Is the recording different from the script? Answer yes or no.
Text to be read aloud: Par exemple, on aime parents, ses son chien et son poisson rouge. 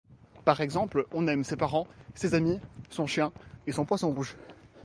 yes